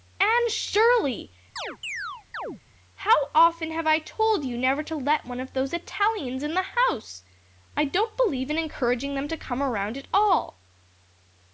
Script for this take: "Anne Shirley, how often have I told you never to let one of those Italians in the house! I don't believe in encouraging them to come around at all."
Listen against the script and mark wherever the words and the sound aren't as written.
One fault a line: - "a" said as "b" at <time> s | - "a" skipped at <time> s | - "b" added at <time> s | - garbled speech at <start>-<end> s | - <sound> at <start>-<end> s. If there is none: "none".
- chirp at 1.6-2.6 s